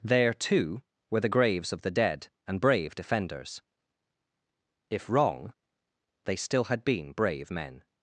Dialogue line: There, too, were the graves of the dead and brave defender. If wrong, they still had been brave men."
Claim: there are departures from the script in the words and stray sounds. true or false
true